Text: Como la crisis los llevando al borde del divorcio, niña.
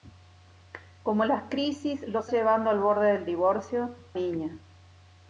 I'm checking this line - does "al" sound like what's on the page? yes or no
yes